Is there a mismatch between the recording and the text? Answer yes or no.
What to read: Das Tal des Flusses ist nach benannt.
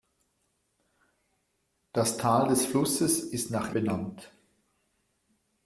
no